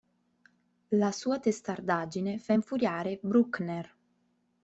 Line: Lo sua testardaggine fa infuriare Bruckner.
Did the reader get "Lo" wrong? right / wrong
wrong